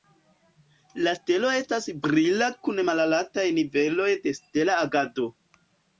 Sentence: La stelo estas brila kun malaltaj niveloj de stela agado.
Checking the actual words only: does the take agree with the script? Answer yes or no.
yes